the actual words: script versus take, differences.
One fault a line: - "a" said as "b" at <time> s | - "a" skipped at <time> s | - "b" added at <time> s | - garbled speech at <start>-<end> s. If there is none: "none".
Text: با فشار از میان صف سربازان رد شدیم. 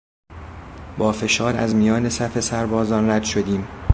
none